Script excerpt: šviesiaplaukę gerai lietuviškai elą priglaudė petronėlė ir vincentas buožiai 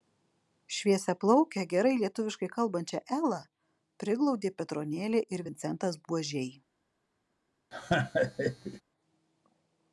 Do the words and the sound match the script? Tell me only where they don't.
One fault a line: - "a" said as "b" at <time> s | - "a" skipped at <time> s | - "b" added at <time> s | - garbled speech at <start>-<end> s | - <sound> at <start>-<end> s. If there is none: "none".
- "kalbančią" added at 2.6 s
- laugh at 7.7-8.8 s